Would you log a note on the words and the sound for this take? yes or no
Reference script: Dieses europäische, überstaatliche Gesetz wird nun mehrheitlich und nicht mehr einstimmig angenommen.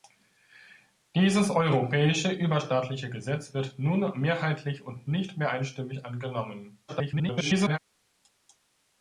yes